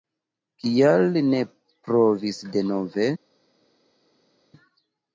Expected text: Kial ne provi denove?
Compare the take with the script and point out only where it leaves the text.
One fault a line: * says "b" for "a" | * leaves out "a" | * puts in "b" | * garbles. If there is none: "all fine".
all fine